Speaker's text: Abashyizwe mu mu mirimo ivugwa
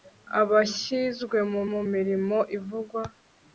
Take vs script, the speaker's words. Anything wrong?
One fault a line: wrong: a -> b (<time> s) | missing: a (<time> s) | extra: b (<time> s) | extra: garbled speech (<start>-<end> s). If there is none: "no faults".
no faults